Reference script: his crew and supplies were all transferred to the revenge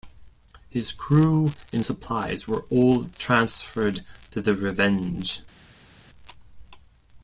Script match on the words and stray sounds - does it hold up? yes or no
yes